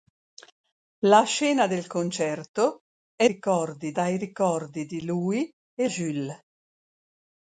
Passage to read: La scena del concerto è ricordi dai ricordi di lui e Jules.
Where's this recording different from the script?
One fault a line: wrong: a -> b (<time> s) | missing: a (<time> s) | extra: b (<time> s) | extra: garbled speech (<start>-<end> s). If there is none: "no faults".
no faults